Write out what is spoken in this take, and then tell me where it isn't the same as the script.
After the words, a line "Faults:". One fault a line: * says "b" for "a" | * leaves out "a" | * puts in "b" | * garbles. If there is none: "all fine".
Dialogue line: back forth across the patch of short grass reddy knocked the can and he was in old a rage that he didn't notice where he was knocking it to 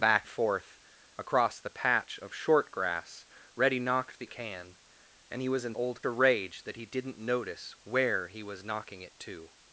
back forth across the patch of short grass reddy knocked the can and he was in old a rage that he didn't notice where he was knocking it to
Faults:
all fine